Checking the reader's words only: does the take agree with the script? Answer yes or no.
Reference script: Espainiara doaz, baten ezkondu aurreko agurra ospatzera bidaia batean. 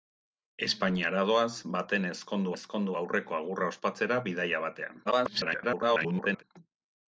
no